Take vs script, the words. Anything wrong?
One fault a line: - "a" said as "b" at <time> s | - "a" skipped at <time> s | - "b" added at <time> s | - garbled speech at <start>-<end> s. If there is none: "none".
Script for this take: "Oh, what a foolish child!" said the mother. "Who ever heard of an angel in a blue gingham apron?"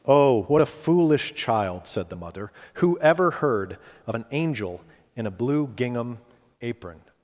none